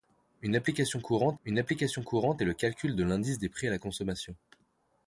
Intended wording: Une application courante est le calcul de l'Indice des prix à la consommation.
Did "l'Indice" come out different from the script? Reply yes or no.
no